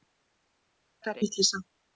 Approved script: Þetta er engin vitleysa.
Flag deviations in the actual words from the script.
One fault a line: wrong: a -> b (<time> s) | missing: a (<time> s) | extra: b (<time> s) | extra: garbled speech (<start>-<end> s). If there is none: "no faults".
missing: engin (1.2 s)